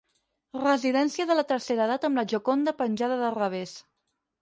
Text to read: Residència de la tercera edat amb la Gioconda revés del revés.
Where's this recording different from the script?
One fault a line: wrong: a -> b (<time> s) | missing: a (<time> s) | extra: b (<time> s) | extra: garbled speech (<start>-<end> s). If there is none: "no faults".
wrong: revés -> penjada (2.9 s)